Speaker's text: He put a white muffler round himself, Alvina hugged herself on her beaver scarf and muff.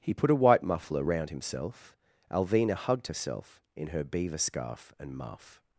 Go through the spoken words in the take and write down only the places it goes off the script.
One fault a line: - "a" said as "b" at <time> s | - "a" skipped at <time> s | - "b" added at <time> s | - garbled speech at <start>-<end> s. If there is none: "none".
- "on" said as "in" at 3.8 s